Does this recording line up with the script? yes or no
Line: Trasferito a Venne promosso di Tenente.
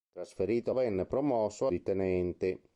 yes